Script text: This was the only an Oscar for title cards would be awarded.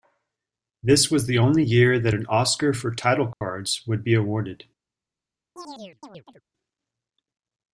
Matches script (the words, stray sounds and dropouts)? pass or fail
fail